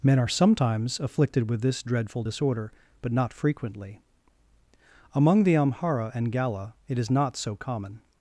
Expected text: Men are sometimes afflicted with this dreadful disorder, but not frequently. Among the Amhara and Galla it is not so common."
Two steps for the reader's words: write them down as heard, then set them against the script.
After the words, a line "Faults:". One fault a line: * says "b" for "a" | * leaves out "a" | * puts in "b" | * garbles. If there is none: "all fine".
Men are sometimes afflicted with this dreadful disorder, but not frequently. Among the Amhara and Galla it is not so common."
Faults:
all fine